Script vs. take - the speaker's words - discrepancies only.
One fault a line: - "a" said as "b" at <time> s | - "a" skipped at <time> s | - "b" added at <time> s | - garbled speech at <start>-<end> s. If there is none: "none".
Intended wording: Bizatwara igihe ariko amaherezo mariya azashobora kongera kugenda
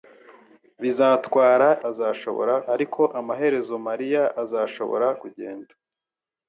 - "igihe" said as "azashobora" at 1.9 s
- "kongera" skipped at 5.1 s